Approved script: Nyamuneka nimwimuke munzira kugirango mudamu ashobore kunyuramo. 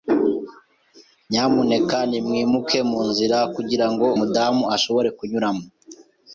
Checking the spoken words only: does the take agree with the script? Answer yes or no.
yes